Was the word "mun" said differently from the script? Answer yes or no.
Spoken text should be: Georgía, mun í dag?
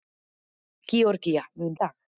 no